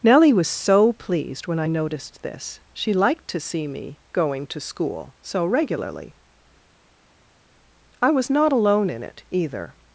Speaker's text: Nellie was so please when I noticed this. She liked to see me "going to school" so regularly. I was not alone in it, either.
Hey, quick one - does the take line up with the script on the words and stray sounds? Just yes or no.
no